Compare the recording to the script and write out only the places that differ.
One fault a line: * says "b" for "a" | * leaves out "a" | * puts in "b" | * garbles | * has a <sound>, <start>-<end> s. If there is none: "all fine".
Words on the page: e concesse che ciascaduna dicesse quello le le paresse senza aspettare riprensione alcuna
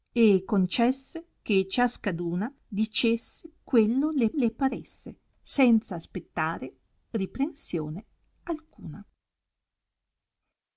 all fine